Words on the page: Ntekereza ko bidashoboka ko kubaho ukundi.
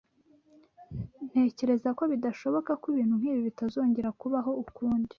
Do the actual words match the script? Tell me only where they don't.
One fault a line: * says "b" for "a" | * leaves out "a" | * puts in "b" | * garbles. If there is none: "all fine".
* puts in "ibintu nkibi bitazongera"